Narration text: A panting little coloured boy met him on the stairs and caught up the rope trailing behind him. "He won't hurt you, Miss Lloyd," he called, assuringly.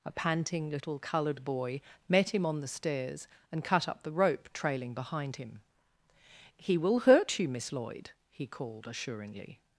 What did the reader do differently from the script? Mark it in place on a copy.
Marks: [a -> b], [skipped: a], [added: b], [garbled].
A panting little coloured boy met him on the stairs and [caught -> cut] up the rope trailing behind him. "He [won't -> will] hurt you, Miss Lloyd," he called, assuringly.